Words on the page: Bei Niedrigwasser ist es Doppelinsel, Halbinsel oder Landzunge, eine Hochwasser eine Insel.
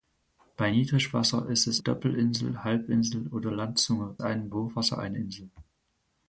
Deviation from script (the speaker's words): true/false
false